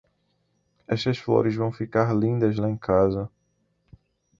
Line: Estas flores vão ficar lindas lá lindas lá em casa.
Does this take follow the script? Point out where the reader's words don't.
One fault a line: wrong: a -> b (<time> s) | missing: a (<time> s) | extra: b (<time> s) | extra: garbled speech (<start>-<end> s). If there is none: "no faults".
missing: lindas lá (2.7 s)